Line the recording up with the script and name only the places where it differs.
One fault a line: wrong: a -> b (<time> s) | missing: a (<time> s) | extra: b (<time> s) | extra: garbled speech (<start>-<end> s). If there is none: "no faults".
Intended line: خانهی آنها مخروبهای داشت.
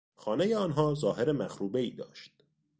extra: ظاهر (0.9 s)